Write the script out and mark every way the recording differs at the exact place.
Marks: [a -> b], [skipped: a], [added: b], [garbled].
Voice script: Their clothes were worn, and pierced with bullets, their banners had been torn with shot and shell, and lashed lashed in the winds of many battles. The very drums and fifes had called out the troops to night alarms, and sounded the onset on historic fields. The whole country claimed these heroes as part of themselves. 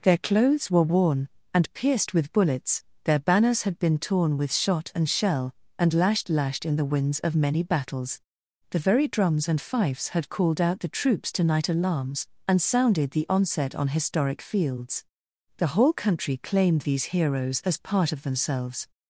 Their clothes were worn, and pierced with bullets, their banners had been torn with shot and shell, and lashed lashed in the winds of many battles. The very drums and fifes had called out the troops to night alarms, and sounded the onset on historic fields. The whole country claimed these heroes as part of themselves.